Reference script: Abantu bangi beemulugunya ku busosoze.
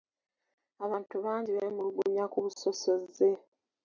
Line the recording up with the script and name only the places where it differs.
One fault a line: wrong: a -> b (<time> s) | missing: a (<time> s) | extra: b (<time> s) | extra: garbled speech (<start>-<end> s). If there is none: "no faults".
no faults